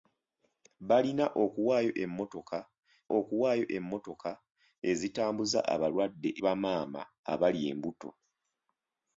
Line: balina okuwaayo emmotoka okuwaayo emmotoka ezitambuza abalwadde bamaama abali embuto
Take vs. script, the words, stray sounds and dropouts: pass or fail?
pass